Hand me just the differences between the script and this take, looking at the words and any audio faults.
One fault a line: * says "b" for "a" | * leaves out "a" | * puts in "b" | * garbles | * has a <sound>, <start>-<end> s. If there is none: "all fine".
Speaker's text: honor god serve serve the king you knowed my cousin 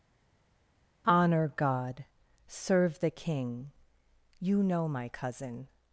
* leaves out "serve"
* says "know" for "knowed"